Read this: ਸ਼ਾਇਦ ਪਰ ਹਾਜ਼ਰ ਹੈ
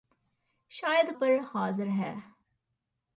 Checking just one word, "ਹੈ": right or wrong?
right